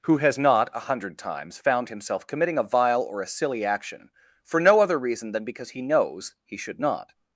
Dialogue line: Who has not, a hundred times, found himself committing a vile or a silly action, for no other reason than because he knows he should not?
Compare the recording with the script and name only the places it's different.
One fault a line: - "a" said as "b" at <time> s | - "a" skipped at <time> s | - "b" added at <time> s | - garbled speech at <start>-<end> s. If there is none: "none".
none